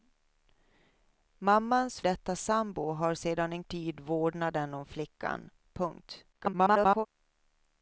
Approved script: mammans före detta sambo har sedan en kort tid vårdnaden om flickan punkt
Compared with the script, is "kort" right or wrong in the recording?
wrong